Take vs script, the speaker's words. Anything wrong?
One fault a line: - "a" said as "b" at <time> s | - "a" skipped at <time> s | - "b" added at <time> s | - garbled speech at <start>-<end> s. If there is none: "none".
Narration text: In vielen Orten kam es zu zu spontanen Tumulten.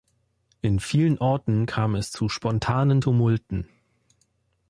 - "zu" skipped at 2.3 s